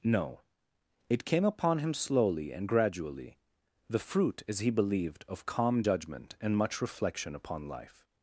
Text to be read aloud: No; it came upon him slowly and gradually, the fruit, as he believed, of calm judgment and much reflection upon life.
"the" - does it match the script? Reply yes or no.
yes